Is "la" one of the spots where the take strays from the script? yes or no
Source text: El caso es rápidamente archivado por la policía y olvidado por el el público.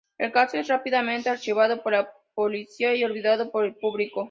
no